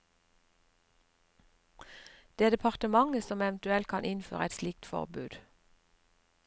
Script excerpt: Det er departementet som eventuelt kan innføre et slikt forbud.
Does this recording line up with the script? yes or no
yes